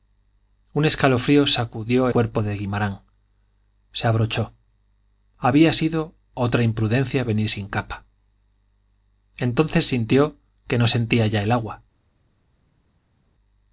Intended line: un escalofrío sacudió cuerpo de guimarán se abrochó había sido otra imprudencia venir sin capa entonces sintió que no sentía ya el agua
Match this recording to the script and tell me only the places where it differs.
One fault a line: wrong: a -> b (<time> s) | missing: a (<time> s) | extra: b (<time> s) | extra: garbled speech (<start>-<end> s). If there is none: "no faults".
no faults